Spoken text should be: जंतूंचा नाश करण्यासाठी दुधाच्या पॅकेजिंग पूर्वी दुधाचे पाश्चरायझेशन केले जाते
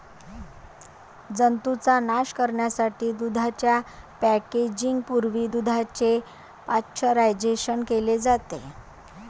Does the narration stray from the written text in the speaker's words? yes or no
no